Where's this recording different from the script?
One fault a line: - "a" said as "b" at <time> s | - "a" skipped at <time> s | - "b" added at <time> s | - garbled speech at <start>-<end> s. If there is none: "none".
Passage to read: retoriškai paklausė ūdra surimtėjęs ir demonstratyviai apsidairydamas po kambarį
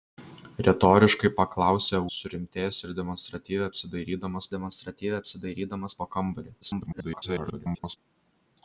- "ūdra" skipped at 2.0 s
- "demonstratyviai apsidairydamas" added at 4.6 s
- garbled speech at 6.6-8.0 s